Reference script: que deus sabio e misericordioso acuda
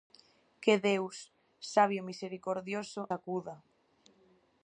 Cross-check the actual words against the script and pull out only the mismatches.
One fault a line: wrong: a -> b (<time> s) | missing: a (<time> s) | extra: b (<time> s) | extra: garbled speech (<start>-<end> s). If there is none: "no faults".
no faults